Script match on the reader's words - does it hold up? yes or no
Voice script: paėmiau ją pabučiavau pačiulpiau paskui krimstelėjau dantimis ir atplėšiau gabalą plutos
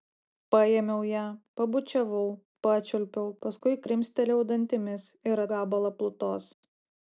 no